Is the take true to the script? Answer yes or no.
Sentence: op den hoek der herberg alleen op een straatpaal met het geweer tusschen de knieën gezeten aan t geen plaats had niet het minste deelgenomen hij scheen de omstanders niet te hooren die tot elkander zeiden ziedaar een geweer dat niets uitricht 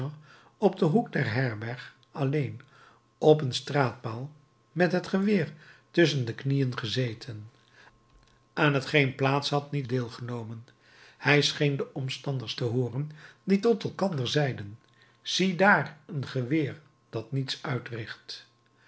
no